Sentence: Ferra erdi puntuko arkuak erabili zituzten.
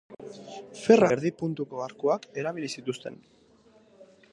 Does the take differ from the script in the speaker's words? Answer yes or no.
no